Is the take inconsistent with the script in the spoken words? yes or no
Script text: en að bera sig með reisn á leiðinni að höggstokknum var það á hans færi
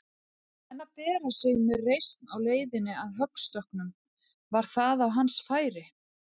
no